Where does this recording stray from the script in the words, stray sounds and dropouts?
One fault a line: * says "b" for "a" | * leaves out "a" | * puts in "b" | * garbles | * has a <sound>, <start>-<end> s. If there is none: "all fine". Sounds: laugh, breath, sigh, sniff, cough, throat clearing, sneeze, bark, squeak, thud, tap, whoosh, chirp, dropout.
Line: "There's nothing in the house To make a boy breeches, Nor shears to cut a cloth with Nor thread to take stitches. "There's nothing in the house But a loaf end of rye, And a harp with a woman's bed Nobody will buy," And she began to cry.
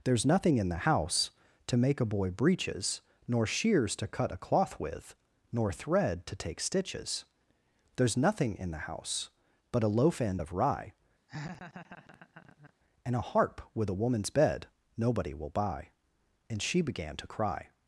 * has a laugh, 11.3-12.7 s